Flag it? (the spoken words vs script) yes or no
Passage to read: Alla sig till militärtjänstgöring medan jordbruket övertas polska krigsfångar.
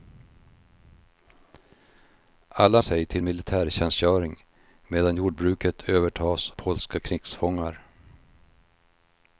no